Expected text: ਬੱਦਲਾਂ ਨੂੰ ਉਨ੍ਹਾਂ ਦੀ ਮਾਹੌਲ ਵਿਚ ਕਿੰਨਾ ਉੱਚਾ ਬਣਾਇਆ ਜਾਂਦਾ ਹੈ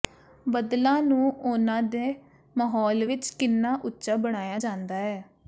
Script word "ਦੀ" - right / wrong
wrong